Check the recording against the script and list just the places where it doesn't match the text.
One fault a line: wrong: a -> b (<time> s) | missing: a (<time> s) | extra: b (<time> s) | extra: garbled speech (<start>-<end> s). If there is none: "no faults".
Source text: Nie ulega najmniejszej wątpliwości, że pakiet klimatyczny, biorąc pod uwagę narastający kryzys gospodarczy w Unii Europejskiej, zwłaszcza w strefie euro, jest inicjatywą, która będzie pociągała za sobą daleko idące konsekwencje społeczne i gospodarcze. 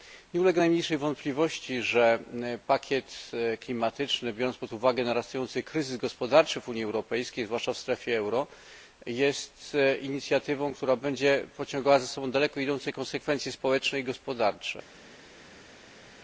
no faults